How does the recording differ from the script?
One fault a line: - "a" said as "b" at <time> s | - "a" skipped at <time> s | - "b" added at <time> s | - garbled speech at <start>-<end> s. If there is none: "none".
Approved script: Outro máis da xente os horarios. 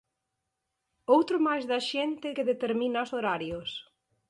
- "que determina" added at 2.3 s